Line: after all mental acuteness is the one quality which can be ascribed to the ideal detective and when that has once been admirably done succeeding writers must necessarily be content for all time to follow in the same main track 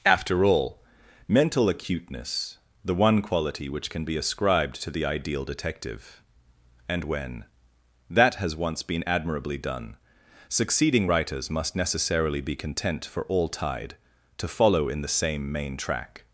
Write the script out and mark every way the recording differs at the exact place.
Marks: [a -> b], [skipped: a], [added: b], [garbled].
after all mental acuteness [skipped: is] the one quality which can be ascribed to the ideal detective and when that has once been admirably done succeeding writers must necessarily be content for all [time -> tide] to follow in the same main track